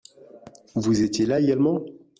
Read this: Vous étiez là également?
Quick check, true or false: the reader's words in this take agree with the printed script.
true